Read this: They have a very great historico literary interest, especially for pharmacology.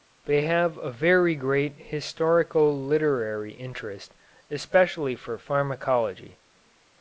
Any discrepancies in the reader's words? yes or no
no